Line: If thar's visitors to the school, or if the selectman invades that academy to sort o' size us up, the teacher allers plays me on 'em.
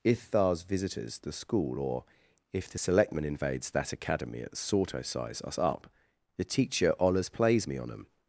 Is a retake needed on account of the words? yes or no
yes